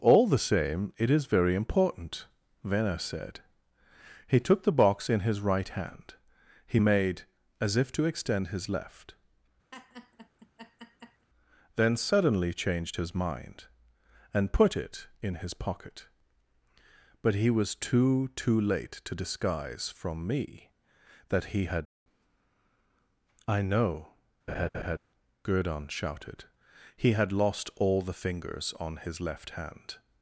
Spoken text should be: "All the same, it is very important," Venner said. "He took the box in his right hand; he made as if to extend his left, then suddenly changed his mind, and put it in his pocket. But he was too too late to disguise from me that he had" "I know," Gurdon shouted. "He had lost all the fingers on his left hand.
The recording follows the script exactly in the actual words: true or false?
true